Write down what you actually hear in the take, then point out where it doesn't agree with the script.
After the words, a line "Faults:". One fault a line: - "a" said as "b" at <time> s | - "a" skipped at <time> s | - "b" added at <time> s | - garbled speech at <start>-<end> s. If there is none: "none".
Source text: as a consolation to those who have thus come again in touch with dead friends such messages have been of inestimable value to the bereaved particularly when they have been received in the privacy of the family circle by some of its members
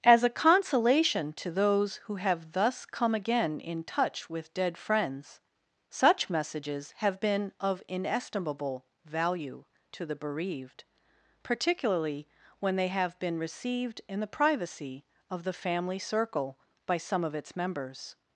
as a consolation to those who have thus come again in touch with dead friends such messages have been of inestimable value to the bereaved particularly when they have been received in the privacy of the family circle by some of its members
Faults:
none